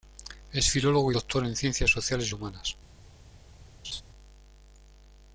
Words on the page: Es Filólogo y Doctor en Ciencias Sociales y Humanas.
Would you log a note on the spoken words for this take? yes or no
no